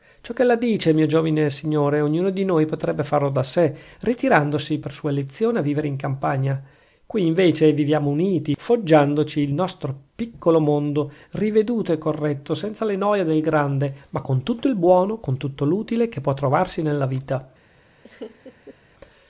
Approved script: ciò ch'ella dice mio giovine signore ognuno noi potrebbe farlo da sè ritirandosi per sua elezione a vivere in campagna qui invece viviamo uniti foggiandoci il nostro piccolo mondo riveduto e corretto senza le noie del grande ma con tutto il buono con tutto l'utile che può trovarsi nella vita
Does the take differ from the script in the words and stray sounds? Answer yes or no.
yes